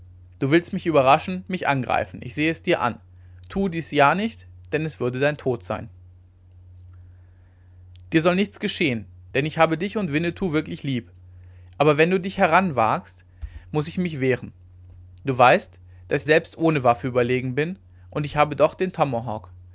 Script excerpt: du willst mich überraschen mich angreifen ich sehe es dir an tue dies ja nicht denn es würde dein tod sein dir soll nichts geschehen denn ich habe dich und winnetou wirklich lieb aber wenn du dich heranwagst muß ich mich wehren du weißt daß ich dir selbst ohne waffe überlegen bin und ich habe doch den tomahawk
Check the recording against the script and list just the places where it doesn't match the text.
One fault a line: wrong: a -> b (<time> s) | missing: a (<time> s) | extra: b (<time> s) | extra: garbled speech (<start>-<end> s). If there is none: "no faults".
missing: dir (16.3 s)